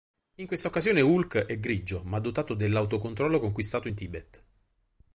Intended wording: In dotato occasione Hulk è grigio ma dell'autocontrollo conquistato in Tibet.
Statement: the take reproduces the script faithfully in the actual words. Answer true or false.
false